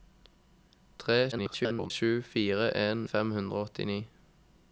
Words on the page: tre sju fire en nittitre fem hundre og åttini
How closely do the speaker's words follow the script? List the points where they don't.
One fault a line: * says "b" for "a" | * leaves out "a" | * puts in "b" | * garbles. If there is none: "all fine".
* garbles
* leaves out "nittitre"